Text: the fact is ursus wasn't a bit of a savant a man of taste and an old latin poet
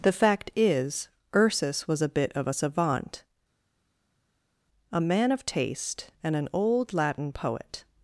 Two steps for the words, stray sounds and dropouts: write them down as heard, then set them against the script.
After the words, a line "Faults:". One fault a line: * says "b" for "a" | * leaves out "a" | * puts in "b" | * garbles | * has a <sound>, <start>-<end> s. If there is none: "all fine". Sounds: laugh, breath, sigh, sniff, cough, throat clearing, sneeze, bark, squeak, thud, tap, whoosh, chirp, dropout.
the fact is ursus was a bit of a savant a man of taste and an old latin poet
Faults:
* says "was" for "wasn't"